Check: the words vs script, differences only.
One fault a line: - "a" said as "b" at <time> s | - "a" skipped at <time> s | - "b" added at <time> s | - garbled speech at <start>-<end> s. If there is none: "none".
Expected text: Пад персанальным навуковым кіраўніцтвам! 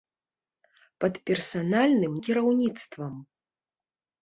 - "навуковым" skipped at 2.1 s